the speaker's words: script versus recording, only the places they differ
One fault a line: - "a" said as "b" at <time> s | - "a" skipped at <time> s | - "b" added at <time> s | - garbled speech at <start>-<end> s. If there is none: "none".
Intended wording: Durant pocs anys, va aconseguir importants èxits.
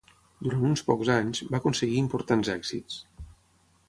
- "uns" added at 0.7 s